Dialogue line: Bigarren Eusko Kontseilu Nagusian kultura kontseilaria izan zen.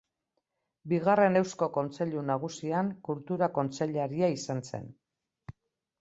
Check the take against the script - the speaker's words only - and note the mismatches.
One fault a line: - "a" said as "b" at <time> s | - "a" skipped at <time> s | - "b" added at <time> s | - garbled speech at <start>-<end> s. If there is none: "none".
none